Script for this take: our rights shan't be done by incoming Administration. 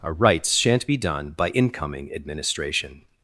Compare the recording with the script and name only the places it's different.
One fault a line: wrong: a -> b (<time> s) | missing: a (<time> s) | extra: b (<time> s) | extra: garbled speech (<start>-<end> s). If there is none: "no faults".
no faults